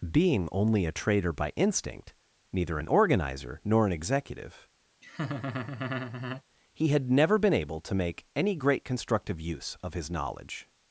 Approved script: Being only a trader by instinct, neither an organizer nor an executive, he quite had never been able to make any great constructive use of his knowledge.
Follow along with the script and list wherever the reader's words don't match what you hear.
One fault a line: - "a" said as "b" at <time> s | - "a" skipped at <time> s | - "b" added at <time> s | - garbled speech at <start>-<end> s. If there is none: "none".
- "quite" skipped at 6.9 s